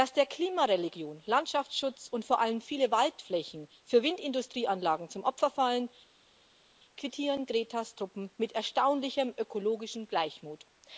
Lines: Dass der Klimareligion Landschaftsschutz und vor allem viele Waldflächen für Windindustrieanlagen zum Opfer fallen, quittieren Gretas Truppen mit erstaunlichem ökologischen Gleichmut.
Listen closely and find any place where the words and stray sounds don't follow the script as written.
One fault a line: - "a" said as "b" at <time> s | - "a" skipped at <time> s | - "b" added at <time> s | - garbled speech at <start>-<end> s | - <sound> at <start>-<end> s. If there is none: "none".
none